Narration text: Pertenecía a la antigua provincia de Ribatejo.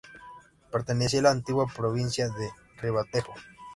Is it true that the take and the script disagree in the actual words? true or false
false